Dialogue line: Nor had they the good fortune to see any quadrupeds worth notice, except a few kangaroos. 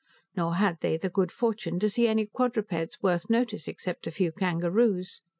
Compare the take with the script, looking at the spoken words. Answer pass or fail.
pass